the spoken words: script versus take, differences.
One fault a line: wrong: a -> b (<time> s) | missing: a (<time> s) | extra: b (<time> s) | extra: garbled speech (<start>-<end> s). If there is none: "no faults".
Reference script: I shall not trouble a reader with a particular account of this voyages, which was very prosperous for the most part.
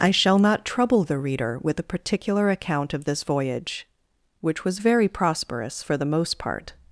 wrong: a -> the (1.0 s)
wrong: voyages -> voyage (3.2 s)